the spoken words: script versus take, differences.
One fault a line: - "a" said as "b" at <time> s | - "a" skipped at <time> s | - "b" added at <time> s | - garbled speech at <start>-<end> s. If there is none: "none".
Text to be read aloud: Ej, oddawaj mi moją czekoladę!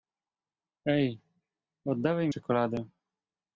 - "mi moją" skipped at 2.3 s